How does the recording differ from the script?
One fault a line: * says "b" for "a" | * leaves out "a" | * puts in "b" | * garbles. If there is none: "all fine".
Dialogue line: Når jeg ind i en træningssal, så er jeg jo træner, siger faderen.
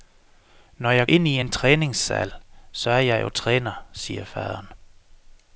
all fine